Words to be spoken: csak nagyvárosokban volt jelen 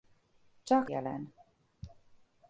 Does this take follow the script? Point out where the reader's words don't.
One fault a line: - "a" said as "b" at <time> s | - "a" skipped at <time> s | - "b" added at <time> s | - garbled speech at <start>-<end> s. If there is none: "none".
- "nagyvárosokban volt" skipped at 0.9 s